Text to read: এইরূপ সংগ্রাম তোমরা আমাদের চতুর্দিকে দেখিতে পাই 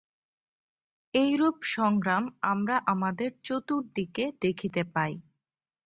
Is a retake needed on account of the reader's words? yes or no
yes